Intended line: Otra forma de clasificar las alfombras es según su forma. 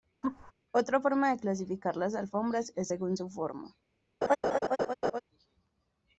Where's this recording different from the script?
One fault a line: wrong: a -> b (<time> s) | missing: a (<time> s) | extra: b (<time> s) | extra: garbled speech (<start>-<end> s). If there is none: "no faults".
no faults